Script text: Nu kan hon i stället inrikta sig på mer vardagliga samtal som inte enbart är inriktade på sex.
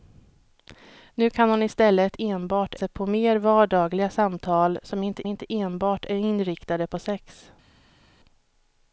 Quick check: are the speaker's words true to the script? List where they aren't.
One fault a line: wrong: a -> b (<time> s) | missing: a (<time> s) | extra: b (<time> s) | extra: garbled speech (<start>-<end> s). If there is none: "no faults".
wrong: inrikta -> enbart (2.2 s)
extra: inte (5.3 s)